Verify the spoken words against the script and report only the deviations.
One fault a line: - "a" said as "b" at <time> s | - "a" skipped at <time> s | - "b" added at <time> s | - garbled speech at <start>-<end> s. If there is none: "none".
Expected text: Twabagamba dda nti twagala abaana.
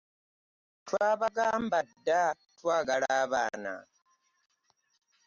- "nti" skipped at 2.2 s